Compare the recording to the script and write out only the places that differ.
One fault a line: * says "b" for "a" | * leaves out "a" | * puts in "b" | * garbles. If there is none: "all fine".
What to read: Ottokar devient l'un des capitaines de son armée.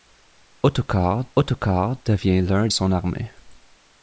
* puts in "ottokar"
* leaves out "des capitaines de"